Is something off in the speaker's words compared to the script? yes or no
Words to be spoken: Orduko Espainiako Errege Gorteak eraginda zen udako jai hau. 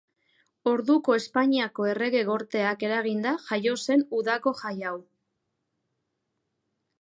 yes